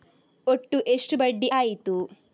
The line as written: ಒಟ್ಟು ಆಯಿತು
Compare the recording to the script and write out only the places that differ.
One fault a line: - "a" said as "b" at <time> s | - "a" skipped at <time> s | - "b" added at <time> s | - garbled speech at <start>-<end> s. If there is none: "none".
- "ಎಷ್ಟು ಬಡ್ಡಿ" added at 0.9 s